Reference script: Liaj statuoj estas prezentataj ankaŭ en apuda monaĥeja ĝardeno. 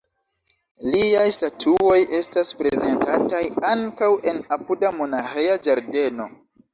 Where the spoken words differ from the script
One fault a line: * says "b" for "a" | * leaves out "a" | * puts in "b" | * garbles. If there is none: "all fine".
all fine